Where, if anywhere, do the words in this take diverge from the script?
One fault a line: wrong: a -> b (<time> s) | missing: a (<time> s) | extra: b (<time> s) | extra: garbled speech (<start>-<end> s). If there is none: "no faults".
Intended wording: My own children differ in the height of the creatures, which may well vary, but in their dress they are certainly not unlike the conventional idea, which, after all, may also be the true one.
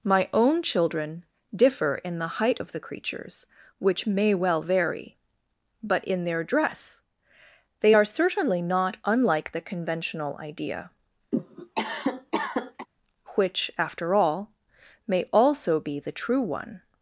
no faults